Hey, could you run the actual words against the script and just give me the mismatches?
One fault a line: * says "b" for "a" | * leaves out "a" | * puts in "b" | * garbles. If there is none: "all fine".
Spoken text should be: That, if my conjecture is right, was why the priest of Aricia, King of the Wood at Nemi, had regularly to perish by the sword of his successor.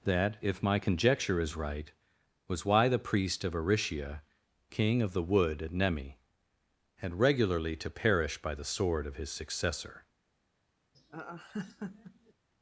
all fine